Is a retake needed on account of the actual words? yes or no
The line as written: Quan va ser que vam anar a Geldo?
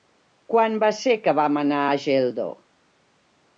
no